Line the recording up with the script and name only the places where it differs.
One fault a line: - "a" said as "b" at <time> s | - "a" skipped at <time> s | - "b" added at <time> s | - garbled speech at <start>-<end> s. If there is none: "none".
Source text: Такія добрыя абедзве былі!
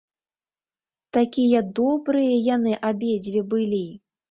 - "яны" added at 2.5 s